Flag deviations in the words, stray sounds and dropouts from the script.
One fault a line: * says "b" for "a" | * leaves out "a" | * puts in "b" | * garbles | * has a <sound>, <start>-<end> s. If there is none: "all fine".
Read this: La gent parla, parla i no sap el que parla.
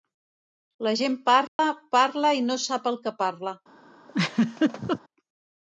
* has a dropout, 1.5-1.6 s
* has a laugh, 4.1-5.0 s